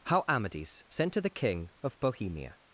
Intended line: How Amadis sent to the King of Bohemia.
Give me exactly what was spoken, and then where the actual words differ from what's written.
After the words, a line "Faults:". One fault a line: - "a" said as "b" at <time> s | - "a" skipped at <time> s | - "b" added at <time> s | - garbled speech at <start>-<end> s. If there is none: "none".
How Amadis sent to the King of Bohemia.
Faults:
none